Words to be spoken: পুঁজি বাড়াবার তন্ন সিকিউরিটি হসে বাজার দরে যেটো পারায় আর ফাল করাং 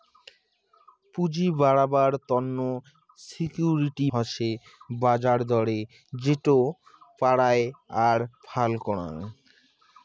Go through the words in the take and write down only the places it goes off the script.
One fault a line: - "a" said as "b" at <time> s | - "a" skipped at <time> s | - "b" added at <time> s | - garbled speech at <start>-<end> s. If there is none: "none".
none